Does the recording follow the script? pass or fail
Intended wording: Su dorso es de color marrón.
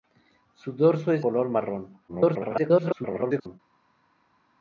fail